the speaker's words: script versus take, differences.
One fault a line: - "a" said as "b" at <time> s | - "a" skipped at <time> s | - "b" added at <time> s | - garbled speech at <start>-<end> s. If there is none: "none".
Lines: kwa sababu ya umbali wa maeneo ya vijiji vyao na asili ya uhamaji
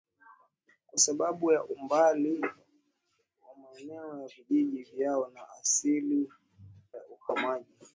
none